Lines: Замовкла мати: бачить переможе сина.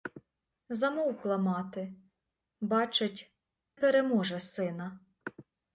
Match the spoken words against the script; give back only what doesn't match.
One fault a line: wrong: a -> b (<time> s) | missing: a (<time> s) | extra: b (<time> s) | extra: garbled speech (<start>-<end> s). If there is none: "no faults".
no faults